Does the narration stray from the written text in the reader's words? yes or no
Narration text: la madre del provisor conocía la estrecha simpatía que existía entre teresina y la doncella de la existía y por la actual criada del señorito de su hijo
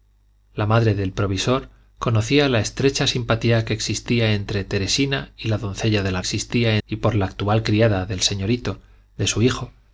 no